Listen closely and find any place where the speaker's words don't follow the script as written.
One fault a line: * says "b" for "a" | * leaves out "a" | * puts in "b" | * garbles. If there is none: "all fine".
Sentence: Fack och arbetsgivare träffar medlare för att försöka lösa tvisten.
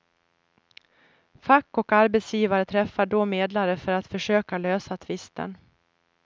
* puts in "då"